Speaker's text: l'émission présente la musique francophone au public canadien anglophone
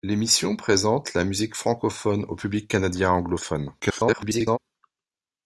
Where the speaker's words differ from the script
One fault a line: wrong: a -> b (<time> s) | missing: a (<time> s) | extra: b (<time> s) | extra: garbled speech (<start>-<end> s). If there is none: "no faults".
extra: garbled speech (3.8-4.6 s)